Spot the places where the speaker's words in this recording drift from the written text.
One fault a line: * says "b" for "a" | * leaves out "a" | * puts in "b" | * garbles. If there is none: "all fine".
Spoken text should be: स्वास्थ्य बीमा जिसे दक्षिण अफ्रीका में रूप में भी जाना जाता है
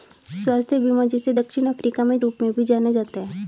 all fine